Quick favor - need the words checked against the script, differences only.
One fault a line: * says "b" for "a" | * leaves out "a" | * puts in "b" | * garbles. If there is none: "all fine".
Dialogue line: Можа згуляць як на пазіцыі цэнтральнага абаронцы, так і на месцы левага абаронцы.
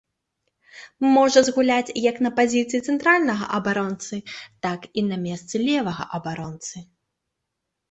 all fine